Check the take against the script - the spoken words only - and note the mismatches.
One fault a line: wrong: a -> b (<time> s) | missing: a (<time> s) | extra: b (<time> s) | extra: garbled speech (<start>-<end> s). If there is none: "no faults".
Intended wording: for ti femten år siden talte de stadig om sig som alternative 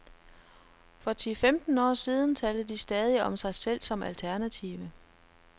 extra: selv (3.5 s)